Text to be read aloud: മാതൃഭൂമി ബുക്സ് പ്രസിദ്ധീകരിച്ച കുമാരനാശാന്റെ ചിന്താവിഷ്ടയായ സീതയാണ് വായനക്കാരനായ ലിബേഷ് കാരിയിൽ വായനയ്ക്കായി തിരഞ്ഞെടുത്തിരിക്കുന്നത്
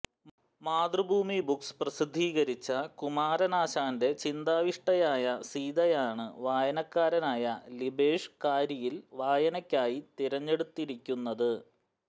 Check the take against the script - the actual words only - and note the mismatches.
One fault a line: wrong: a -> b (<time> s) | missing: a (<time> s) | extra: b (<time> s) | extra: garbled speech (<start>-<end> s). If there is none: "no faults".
no faults